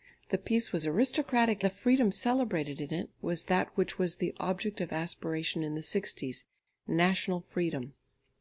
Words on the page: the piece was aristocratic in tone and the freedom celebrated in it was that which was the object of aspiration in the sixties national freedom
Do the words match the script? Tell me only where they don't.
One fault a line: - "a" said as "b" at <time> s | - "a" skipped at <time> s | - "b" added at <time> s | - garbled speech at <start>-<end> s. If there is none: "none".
- "in tone and" skipped at 1.6 s